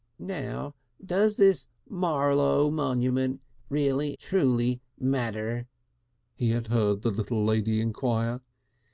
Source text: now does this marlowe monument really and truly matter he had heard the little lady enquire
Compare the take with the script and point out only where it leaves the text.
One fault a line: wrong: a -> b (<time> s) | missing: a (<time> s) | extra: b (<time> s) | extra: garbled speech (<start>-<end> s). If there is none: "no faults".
missing: and (4.2 s)